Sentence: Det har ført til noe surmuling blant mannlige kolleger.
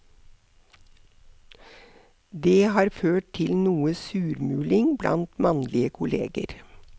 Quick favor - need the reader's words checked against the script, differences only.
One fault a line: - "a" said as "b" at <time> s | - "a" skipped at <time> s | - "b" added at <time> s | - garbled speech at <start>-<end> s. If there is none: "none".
none